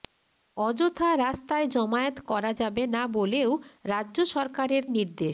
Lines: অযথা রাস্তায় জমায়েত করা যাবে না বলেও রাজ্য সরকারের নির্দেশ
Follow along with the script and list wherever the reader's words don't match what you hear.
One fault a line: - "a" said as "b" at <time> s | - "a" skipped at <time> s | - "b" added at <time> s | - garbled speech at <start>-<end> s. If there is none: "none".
none